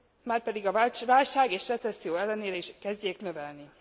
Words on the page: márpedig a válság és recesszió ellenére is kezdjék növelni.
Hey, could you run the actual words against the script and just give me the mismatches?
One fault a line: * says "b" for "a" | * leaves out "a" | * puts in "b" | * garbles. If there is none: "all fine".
all fine